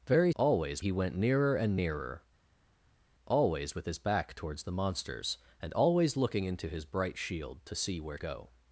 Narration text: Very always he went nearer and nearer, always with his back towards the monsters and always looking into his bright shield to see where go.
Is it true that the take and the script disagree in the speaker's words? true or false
false